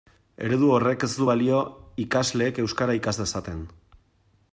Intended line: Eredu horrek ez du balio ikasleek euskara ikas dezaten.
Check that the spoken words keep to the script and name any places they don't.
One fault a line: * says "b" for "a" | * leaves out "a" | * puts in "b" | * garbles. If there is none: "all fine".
all fine